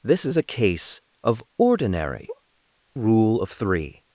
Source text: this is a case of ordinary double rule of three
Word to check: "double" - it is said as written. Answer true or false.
false